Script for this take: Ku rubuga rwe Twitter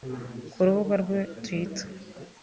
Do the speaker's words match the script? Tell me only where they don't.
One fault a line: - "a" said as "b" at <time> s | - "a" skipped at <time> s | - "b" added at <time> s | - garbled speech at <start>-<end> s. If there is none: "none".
none